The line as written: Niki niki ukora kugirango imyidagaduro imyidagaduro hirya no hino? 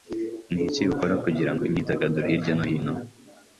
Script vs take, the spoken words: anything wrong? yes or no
yes